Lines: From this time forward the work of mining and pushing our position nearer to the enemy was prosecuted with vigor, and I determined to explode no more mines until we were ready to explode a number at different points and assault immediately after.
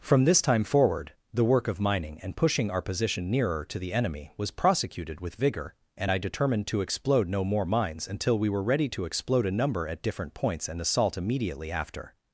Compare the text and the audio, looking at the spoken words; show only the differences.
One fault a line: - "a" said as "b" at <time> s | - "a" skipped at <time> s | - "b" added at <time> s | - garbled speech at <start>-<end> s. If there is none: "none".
none